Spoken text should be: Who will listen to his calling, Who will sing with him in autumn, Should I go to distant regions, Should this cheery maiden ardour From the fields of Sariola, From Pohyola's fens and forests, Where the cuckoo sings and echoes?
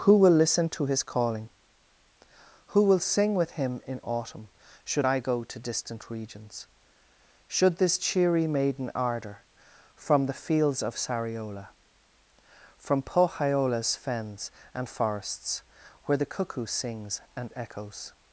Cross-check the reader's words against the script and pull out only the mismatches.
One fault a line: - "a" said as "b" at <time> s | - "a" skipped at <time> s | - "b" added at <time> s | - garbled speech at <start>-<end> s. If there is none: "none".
none